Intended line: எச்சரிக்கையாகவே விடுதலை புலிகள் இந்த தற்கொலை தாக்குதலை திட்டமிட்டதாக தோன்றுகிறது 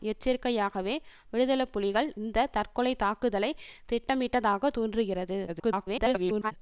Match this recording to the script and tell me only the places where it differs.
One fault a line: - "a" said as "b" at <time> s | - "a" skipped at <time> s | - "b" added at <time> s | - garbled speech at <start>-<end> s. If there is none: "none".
- garbled speech at 5.5-6.5 s